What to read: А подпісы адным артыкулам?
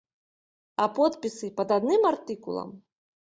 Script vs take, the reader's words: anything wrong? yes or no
yes